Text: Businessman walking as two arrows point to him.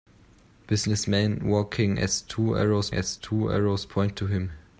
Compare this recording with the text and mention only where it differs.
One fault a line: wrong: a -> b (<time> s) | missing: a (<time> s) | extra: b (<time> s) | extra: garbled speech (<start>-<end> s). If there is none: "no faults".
extra: as two arrows (2.9 s)